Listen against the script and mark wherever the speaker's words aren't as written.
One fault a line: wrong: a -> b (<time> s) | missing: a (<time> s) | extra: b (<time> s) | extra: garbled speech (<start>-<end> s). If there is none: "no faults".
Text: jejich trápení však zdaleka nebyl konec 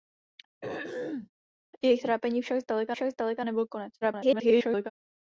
extra: však zdaleka (2.9 s)
extra: garbled speech (4.0-4.9 s)